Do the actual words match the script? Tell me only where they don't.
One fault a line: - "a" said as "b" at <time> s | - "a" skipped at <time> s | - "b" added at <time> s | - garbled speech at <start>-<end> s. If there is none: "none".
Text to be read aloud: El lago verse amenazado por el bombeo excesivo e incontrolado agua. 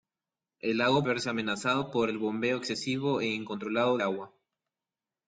none